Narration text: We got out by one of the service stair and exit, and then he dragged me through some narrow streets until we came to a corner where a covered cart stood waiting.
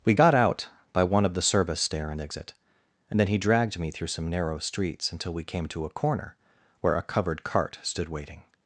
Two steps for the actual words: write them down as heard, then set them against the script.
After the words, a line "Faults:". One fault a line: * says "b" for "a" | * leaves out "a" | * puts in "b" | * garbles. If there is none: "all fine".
We got out by one of the service stair and exit, and then he dragged me through some narrow streets until we came to a corner where a covered cart stood waiting.
Faults:
all fine